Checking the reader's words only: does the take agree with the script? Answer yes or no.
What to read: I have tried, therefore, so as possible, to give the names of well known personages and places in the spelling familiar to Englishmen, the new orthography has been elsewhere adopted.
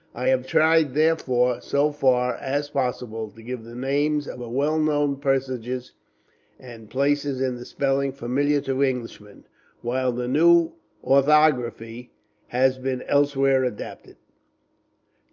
no